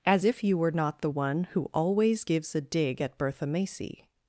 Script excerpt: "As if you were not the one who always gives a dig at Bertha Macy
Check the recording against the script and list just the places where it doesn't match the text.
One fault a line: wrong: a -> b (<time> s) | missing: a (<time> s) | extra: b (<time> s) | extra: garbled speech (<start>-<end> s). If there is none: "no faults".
no faults